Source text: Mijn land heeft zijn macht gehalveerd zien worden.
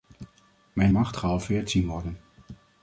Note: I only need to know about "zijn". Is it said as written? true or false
false